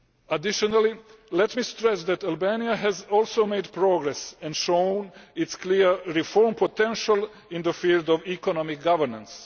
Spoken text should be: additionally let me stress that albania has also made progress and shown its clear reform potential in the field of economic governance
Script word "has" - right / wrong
right